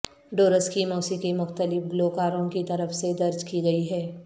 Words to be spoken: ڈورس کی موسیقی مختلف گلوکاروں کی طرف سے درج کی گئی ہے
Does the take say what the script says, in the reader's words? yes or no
yes